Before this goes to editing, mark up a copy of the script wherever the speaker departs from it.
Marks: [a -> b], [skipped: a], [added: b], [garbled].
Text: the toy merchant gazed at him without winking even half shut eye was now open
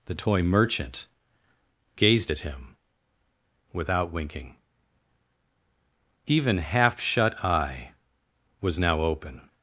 the toy merchant gazed at him without winking even half shut eye was now open